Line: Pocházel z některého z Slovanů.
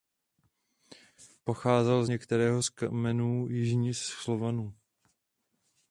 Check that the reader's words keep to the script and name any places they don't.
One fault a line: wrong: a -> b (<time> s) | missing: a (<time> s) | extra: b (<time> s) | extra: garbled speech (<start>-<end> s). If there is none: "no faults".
extra: kmenů jižních (2.7 s)